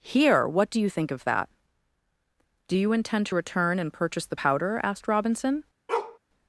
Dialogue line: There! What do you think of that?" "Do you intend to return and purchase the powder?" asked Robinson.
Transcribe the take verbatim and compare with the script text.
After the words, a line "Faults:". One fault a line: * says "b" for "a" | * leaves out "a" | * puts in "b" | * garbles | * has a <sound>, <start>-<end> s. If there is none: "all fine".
Here! What do you think of that?" "Do you intend to return and purchase the powder?" asked Robinson.
Faults:
* says "Here" for "There"
* has a bark, 5.9-6.2 s